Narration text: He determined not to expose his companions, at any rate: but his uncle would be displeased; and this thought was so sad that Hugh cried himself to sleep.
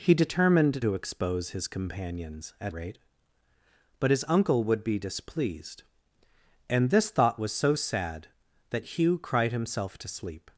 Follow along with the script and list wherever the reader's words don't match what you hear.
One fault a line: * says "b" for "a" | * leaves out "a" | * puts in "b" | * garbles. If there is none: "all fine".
* leaves out "not"
* leaves out "any"